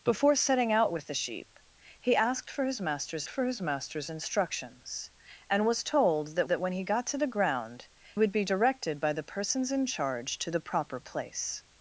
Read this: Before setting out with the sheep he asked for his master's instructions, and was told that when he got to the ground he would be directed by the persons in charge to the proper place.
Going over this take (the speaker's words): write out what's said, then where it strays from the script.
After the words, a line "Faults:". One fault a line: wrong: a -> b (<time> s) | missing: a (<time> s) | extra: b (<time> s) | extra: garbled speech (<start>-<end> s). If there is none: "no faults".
Before setting out with the sheep he asked for his master's for his master's instructions, and was told that that when he got to the ground would be directed by the persons in charge to the proper place.
Faults:
extra: for his master's (3.3 s)
extra: that (6.5 s)
missing: he (7.9 s)